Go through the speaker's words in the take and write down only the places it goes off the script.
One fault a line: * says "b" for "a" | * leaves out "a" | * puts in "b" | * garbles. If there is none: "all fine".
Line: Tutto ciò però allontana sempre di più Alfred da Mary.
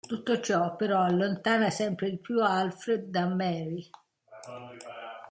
all fine